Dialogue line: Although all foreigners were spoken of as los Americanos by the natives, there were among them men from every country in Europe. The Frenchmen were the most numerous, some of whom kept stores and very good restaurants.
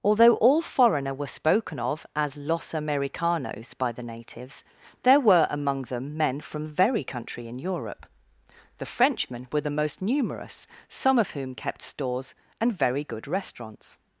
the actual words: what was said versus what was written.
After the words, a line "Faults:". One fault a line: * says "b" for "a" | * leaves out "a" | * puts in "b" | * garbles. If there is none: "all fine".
Although all foreigner were spoken of as los Americanos by the natives, there were among them men from very country in Europe. The Frenchmen were the most numerous, some of whom kept stores and very good restaurants.
Faults:
* says "foreigner" for "foreigners"
* says "very" for "every"